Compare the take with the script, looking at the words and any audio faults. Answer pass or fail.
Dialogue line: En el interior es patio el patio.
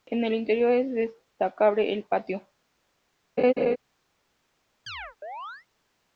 fail